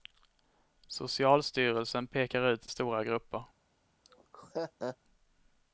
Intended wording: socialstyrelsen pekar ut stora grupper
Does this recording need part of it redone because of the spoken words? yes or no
no